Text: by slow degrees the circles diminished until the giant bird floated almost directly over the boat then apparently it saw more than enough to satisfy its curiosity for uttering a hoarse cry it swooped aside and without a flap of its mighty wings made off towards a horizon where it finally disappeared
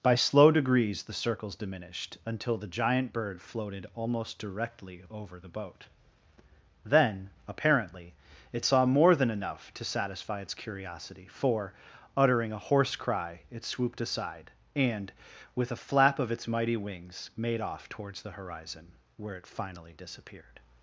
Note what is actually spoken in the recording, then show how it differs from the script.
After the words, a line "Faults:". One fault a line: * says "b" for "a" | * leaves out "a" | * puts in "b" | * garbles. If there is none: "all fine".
by slow degrees the circles diminished until the giant bird floated almost directly over the boat then apparently it saw more than enough to satisfy its curiosity for uttering a hoarse cry it swooped aside and with a flap of its mighty wings made off towards the horizon where it finally disappeared
Faults:
* says "with" for "without"
* says "the" for "a"